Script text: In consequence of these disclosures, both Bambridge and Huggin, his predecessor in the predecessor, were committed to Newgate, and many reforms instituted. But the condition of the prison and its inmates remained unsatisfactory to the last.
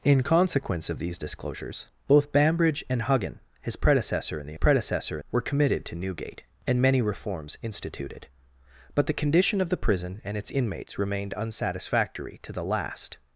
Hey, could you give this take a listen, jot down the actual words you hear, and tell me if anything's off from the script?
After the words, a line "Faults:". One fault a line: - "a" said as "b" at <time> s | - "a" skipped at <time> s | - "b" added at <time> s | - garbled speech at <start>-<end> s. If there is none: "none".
In consequence of these disclosures, both Bambridge and Huggin, his predecessor in the predecessor, were committed to Newgate, and many reforms instituted. But the condition of the prison and its inmates remained unsatisfactory to the last.
Faults:
none